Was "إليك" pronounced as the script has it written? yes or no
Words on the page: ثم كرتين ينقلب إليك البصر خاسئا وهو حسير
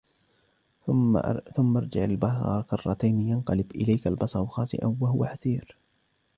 yes